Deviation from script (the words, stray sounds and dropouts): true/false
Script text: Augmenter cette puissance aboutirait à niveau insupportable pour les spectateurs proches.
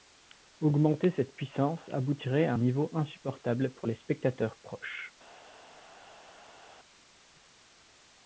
false